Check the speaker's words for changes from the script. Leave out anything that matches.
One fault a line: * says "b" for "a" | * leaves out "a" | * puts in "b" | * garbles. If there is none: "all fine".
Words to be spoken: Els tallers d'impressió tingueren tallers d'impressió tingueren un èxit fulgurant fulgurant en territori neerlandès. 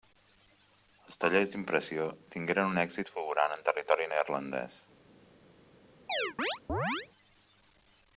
* leaves out "tallers d'impressió tingueren"
* leaves out "fulgurant"